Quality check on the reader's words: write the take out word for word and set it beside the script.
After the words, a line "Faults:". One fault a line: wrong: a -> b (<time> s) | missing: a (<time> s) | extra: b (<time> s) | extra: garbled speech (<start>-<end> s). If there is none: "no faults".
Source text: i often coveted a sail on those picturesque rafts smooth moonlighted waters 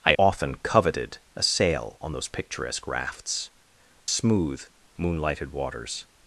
i often coveted a sail on those picturesque rafts smooth moonlighted waters
Faults:
no faults